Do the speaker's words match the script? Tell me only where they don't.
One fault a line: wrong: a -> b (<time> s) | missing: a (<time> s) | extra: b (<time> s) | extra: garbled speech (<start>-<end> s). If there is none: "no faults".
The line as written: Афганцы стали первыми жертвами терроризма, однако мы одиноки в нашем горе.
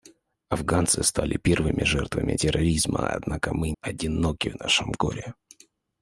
no faults